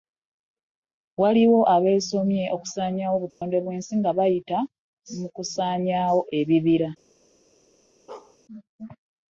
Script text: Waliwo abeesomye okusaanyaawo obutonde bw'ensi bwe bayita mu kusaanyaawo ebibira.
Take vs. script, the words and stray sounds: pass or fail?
fail